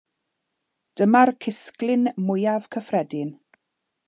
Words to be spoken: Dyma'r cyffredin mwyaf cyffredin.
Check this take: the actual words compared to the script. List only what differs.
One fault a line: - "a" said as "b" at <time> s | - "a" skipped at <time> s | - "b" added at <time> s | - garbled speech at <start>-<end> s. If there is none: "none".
- "cyffredin" said as "cysglyn" at 1.4 s